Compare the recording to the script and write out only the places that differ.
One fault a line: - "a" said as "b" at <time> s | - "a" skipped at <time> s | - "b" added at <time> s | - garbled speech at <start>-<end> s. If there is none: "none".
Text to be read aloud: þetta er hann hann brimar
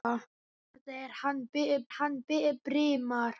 none